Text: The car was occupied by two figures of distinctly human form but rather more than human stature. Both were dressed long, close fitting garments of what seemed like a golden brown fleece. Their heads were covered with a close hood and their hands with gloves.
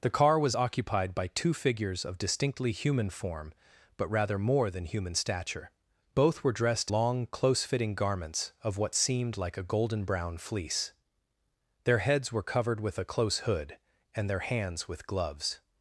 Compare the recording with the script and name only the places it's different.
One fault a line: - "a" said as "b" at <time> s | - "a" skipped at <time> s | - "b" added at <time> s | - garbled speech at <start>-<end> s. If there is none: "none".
none